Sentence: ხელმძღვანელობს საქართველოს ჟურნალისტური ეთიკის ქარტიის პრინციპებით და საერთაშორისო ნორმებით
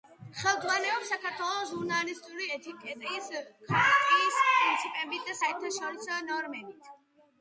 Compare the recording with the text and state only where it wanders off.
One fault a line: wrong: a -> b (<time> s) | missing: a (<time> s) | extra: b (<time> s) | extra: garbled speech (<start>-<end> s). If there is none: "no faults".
no faults